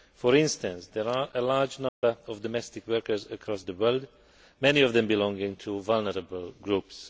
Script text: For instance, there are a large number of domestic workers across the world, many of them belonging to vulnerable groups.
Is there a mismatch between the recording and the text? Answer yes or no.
no